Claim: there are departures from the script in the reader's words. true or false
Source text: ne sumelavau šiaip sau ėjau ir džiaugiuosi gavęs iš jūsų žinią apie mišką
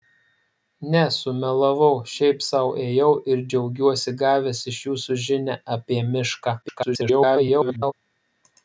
true